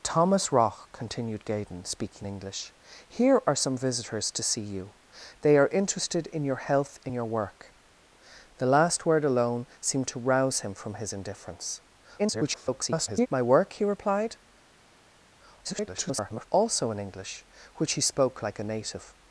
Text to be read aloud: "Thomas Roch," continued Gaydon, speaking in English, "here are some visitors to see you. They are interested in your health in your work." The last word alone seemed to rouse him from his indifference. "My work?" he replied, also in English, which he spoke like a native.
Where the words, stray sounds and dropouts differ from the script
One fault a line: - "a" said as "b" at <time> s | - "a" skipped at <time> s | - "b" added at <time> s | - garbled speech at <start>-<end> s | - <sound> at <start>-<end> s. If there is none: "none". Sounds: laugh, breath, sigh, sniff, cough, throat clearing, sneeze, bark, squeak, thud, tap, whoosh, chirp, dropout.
- "in" skipped at 2.3 s
- garbled speech at 12.2-13.3 s
- garbled speech at 15.6-16.5 s